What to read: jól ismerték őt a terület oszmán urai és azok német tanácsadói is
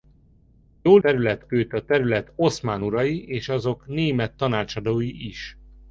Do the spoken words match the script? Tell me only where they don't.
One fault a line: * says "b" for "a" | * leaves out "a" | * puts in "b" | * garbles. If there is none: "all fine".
* says "terület" for "ismerték"